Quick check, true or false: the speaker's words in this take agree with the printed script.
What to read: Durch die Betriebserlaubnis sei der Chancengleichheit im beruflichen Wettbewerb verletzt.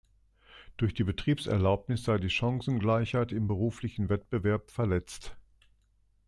false